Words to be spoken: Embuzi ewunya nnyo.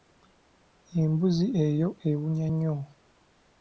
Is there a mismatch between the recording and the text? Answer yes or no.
yes